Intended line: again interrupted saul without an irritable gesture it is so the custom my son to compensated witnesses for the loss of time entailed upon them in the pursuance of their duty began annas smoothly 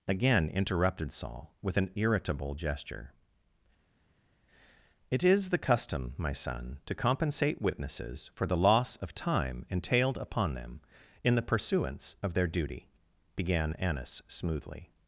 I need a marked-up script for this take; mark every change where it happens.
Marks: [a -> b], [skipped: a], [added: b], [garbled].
again interrupted saul [without -> with] an irritable gesture it is [skipped: so] the custom my son to [compensated -> compensate] witnesses for the loss of time entailed upon them in the pursuance of their duty began annas smoothly